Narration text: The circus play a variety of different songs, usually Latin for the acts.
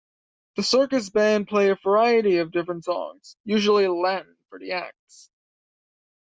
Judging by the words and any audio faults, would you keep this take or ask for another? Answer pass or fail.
fail